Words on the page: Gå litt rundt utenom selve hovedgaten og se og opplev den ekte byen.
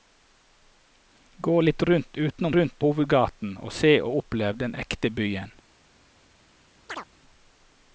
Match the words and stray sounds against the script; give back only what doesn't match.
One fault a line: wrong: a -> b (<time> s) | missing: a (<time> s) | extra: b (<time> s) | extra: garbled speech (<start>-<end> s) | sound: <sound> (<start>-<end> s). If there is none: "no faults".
wrong: selve -> rundt (2.5 s)
sound: chirp (6.9-7.1 s)